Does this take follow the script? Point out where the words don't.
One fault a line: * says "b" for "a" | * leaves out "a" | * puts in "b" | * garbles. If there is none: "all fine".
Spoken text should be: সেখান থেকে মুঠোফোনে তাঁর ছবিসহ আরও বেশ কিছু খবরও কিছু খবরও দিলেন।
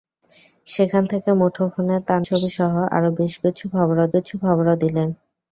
all fine